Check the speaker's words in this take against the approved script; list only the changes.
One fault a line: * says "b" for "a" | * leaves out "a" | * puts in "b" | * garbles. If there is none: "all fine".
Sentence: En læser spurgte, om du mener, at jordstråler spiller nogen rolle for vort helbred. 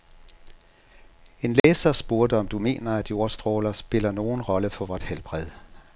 all fine